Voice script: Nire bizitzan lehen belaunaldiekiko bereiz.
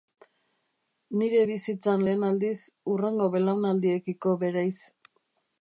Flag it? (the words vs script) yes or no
yes